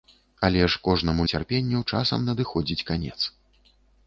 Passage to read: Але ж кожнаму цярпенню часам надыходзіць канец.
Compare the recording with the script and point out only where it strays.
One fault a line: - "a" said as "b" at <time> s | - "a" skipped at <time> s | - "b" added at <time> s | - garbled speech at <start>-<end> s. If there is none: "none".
none